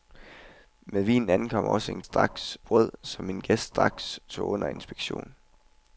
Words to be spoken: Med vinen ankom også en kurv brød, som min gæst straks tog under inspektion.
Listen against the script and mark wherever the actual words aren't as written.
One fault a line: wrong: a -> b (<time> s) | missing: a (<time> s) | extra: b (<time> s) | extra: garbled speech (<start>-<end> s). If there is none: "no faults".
wrong: kurv -> straks (2.0 s)